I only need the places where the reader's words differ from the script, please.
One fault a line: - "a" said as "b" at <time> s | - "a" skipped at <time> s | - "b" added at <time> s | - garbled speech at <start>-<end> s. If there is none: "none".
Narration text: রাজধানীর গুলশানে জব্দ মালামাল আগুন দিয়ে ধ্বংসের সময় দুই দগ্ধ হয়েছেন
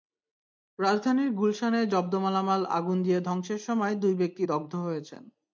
- "ব্যক্তি" added at 4.2 s